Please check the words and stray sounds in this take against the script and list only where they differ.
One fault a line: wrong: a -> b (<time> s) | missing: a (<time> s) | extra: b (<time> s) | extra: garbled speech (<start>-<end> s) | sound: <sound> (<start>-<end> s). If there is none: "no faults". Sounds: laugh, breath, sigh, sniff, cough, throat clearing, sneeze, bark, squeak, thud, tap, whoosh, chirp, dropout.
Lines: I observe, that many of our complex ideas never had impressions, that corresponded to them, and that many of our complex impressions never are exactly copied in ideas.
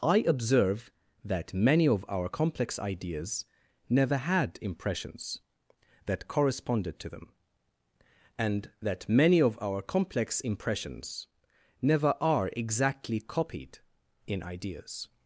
no faults